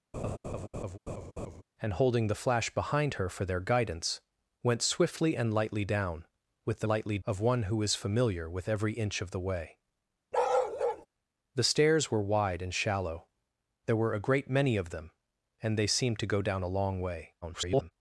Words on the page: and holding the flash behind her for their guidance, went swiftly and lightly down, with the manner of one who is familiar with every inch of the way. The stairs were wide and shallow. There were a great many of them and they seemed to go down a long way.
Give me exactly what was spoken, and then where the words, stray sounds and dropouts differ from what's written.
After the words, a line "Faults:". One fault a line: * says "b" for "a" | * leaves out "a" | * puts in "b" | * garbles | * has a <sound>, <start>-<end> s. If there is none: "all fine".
and holding the flash behind her for their guidance, went swiftly and lightly down, with the lightly of one who is familiar with every inch of the way. The stairs were wide and shallow. There were a great many of them and they seemed to go down a long way. [garbled]
Faults:
* has a laugh, 0.1-1.6 s
* says "lightly" for "manner"
* has a bark, 10.3-11.1 s
* garbles